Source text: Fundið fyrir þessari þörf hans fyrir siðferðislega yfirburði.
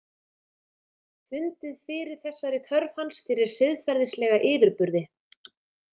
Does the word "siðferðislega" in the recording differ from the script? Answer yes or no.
no